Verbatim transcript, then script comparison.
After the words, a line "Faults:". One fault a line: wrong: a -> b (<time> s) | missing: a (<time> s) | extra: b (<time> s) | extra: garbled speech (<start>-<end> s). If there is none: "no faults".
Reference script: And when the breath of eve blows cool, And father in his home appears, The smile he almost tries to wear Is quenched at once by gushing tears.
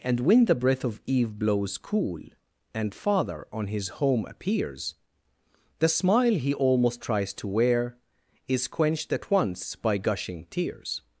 And when the breath of eve blows cool, And father on his home appears, The smile he almost tries to wear Is quenched at once by gushing tears.
Faults:
wrong: in -> on (3.5 s)